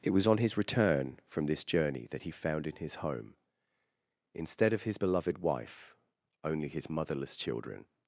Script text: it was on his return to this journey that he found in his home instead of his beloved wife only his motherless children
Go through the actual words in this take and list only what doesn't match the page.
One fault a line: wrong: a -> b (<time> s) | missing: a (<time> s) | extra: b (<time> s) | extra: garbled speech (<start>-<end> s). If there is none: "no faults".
wrong: to -> from (1.3 s)